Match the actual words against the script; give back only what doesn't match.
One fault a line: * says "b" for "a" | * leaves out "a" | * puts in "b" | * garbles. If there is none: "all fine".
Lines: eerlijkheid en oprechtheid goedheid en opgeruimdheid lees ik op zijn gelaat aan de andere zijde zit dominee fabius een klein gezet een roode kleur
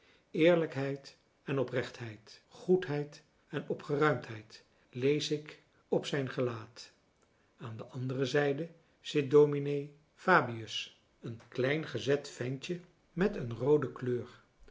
* puts in "ventje met"